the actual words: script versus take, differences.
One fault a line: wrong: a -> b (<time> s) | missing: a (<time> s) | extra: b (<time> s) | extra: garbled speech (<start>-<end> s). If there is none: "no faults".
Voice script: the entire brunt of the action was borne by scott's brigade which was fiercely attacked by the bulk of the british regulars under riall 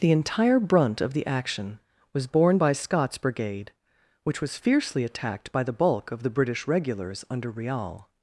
no faults